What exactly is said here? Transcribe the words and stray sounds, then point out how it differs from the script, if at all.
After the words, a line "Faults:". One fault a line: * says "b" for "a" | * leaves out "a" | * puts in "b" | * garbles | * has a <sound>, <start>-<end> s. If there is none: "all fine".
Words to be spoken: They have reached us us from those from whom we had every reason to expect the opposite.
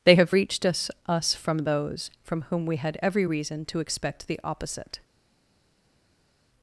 They have reached us us from those from whom we had every reason to expect the opposite.
Faults:
all fine